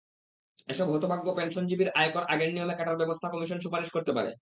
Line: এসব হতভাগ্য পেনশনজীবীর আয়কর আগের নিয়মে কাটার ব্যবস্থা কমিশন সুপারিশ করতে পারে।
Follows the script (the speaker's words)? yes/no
yes